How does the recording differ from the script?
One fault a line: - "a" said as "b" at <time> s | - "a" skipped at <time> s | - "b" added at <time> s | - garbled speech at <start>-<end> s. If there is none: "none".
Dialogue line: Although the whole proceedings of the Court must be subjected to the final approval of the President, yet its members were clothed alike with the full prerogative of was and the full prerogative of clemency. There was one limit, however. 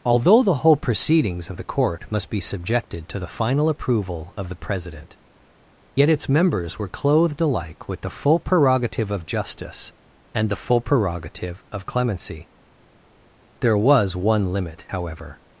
- "was" said as "justice" at 9.3 s